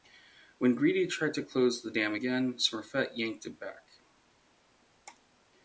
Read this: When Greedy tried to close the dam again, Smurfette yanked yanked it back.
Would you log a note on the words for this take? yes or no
yes